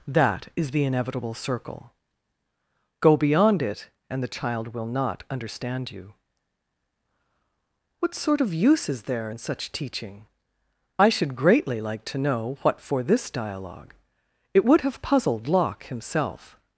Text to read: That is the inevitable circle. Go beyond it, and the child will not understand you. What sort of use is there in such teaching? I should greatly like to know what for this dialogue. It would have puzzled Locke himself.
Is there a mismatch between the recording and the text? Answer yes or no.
no